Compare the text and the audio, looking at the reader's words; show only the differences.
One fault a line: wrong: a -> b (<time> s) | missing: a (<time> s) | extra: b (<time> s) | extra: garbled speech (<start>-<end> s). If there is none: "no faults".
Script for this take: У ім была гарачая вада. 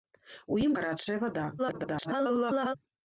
missing: была (0.7 s)
extra: garbled speech (1.6-2.7 s)